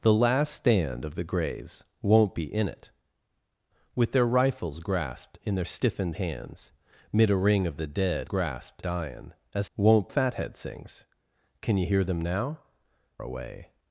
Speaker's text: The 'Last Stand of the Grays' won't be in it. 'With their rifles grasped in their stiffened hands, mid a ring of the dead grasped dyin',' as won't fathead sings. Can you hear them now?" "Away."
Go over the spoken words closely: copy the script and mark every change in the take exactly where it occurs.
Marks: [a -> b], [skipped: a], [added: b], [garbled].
The 'Last Stand of the Grays' won't be in it. 'With their rifles grasped in their stiffened hands, mid a ring of the dead grasped dyin',' as won't fathead sings. Can you hear them now?" "Away."